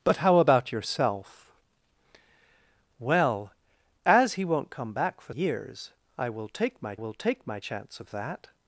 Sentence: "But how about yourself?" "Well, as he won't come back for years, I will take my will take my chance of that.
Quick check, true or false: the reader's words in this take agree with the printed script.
true